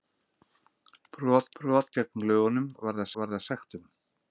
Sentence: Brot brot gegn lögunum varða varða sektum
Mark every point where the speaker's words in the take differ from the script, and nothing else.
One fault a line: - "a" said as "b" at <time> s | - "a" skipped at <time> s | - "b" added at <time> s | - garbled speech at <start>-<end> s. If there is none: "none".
none